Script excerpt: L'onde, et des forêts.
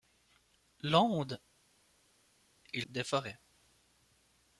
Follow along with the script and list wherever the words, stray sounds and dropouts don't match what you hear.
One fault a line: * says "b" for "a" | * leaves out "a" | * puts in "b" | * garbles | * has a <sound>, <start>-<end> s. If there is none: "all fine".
all fine